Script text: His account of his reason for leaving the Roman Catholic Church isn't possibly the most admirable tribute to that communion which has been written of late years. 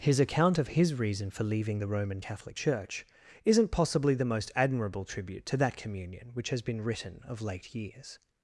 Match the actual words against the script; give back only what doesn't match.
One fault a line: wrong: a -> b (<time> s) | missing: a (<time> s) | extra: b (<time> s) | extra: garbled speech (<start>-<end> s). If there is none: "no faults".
no faults